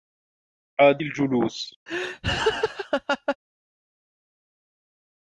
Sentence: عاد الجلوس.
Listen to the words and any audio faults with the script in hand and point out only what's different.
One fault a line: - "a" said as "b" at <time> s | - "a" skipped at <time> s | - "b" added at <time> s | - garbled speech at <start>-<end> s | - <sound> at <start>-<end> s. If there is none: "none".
- laugh at 1.9-3.4 s